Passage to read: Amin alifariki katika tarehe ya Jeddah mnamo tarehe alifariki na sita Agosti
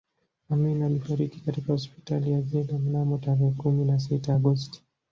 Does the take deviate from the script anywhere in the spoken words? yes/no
yes